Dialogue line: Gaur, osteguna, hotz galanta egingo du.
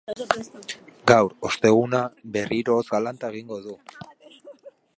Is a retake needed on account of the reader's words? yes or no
yes